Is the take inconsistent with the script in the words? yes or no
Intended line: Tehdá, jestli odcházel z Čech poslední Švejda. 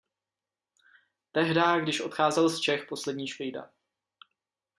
yes